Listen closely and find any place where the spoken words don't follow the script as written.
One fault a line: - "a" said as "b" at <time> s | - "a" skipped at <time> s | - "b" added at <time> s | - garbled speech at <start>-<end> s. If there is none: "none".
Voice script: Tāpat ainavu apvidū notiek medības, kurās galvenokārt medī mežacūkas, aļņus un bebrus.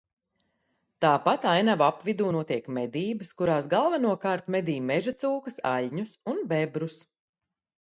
none